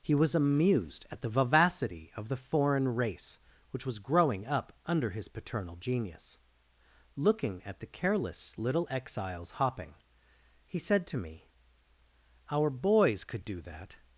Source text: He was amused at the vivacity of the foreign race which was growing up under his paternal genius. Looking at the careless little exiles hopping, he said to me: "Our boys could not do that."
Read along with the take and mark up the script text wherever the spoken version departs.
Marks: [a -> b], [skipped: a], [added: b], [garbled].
He was amused at the vivacity of the foreign race which was growing up under his paternal genius. Looking at the careless little exiles hopping, he said to me: "Our boys could [skipped: not] do that."